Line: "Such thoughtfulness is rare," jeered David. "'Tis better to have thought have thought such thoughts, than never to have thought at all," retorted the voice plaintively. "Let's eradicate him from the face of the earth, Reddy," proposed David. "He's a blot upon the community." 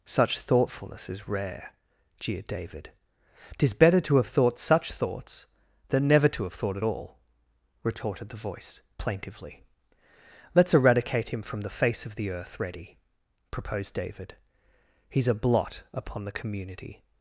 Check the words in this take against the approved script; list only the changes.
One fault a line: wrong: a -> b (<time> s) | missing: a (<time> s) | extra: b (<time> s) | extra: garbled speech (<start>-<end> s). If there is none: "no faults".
missing: have thought (4.6 s)